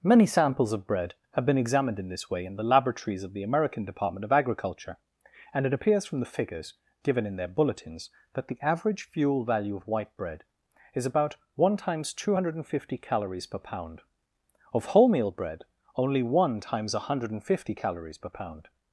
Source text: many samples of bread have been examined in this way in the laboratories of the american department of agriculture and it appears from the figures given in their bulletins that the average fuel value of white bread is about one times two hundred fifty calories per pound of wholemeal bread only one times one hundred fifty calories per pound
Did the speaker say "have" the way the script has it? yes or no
yes